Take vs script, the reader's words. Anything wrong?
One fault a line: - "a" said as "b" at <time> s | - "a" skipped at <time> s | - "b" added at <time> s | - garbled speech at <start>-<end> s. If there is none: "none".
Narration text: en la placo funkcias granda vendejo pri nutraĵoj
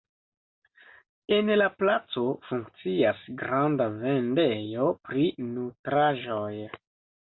none